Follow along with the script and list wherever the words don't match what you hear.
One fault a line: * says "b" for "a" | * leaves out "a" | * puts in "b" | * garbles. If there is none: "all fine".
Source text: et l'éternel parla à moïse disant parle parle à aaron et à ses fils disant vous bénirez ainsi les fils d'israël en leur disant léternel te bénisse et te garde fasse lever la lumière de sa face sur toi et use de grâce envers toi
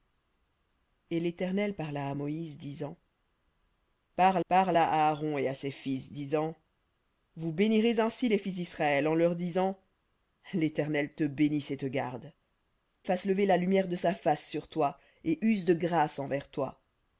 all fine